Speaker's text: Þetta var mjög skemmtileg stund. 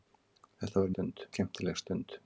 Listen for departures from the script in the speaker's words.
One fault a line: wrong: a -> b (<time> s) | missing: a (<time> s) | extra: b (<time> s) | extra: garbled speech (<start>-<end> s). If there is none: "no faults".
wrong: mjög -> stund (0.9 s)